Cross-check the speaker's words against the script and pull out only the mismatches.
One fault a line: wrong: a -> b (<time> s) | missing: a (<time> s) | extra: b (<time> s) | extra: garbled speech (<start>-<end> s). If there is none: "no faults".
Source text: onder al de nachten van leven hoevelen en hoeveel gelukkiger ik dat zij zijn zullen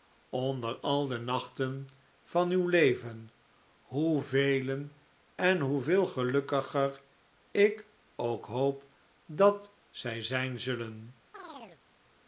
extra: uw (2.5 s)
extra: ook hoop (8.2 s)